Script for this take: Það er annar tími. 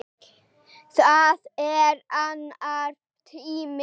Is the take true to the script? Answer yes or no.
yes